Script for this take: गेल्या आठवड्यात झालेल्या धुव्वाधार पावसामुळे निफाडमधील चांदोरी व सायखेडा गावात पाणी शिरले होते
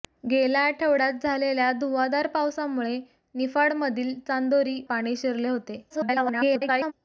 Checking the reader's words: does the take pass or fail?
fail